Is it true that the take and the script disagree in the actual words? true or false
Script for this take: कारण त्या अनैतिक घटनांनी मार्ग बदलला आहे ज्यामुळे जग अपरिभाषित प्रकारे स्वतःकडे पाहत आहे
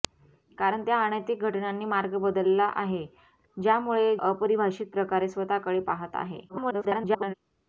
true